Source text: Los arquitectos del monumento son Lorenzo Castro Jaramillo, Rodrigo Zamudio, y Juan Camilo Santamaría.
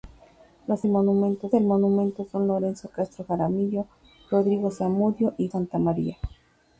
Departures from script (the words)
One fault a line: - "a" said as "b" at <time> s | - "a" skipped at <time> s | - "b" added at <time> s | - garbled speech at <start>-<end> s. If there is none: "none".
- "arquitectos" said as "monumento" at 0.9 s
- "Juan Camilo" skipped at 5.5 s